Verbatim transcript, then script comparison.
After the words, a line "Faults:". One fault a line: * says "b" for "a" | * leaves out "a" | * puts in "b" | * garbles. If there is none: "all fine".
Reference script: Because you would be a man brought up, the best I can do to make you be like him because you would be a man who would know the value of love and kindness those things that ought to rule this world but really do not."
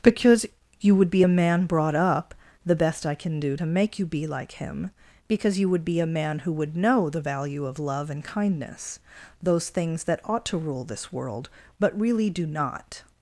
Because you would be a man brought up, the best I can do to make you be like him because you would be a man who would know the value of love and kindness those things that ought to rule this world but really do not."
Faults:
all fine